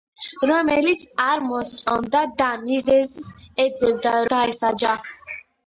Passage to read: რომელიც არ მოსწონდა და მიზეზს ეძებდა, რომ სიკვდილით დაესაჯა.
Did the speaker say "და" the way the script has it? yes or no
yes